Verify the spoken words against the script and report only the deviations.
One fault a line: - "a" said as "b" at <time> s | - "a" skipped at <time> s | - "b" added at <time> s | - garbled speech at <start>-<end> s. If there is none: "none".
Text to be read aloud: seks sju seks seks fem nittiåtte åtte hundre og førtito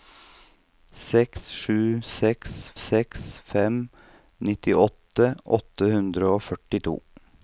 none